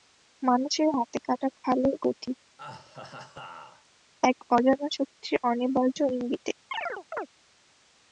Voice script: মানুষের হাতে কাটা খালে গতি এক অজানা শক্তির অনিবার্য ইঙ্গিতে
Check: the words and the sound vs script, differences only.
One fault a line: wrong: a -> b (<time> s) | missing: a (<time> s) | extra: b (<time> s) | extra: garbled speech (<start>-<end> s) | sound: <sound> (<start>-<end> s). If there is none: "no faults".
sound: laugh (2.6-3.9 s)
sound: chirp (6.7-7.3 s)